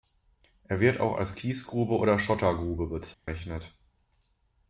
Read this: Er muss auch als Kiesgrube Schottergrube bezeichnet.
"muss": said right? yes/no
no